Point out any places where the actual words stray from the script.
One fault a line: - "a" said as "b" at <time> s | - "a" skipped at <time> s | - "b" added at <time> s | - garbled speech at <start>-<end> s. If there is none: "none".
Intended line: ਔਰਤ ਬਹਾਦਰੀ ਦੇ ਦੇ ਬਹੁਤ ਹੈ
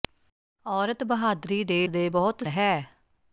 none